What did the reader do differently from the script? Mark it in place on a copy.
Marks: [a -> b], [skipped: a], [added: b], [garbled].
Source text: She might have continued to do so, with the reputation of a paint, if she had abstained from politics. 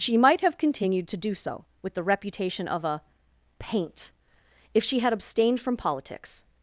She might have continued to do so, with the reputation of a paint, if she had abstained from politics.